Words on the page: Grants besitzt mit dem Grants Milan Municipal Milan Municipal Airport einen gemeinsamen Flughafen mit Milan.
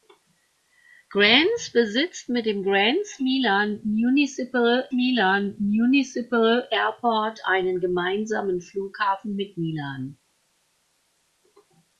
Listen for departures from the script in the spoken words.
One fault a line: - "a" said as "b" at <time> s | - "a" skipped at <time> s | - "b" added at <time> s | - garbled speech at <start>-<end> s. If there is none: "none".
none